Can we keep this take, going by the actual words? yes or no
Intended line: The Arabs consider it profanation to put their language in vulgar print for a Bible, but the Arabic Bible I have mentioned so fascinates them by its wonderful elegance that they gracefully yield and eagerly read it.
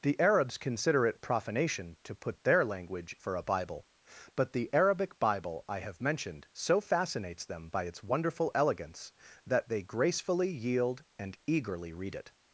no